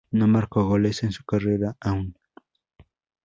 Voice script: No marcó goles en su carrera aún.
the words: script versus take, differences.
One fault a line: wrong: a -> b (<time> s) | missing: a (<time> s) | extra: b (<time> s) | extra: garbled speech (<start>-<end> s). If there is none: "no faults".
no faults